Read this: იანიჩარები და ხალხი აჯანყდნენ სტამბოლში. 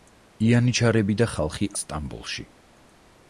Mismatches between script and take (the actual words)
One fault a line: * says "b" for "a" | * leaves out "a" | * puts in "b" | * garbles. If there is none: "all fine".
* leaves out "აჯანყდნენ"